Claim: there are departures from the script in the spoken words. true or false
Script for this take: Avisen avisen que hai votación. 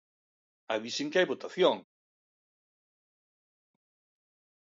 true